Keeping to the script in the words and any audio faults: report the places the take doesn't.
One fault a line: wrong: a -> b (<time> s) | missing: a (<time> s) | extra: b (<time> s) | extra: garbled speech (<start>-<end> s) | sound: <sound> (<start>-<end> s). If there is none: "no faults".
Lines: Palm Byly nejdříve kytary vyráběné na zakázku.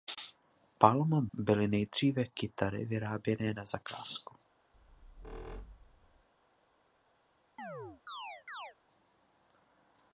sound: squeak (4.7-6.3 s)
sound: chirp (7.6-8.8 s)